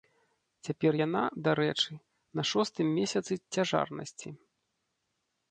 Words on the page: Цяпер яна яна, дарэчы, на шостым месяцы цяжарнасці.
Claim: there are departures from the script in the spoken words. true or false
true